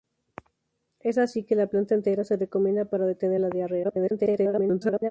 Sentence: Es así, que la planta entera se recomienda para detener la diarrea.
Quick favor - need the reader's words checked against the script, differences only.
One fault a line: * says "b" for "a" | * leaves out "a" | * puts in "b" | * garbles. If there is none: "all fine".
* garbles